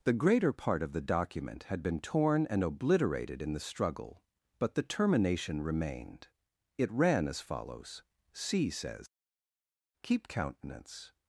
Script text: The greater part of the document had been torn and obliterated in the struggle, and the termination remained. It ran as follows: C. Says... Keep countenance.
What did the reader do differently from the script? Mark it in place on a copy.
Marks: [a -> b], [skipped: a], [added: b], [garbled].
The greater part of the document had been torn and obliterated in the struggle, [and -> but] the termination remained. It ran as follows: C. Says... Keep countenance.